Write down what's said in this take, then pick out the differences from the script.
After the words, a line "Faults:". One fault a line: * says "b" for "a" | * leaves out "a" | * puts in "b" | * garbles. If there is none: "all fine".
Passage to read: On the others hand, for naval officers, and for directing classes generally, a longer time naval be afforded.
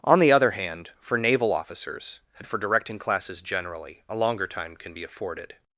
On the other hand, for naval officers, and for directing classes generally, a longer time can be afforded.
Faults:
* says "other" for "others"
* says "can" for "naval"